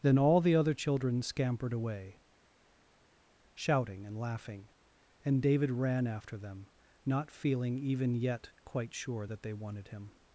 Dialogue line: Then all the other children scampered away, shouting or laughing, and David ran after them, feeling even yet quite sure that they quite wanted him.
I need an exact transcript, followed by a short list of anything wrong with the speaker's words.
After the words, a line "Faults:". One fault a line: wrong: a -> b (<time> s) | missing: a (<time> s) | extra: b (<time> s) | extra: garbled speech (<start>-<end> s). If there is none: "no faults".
Then all the other children scampered away, shouting and laughing, and David ran after them, not feeling even yet quite sure that they wanted him.
Faults:
wrong: or -> and (4.0 s)
extra: not (7.0 s)
missing: quite (9.5 s)